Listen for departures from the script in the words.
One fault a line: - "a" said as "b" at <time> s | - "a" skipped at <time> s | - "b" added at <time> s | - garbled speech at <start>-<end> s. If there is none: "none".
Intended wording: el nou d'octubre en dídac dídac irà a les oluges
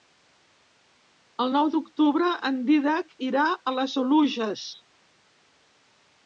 - "dídac" skipped at 3.1 s